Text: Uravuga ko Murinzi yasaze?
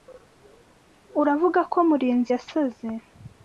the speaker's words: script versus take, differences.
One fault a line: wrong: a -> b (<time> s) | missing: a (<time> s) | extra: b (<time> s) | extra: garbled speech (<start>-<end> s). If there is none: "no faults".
no faults